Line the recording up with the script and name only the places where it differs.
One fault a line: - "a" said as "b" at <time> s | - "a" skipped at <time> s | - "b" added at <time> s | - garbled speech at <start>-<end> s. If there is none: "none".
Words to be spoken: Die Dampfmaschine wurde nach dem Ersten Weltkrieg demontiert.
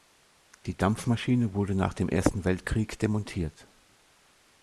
none